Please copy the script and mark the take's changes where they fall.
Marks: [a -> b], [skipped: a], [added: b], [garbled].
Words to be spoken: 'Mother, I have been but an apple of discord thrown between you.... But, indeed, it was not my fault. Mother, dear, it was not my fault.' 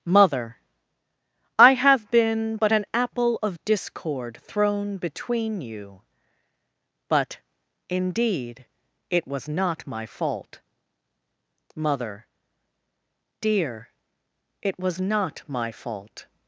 'Mother, I have been but an apple of discord thrown between you.... But, indeed, it was not my fault. Mother, dear, it was not my fault.'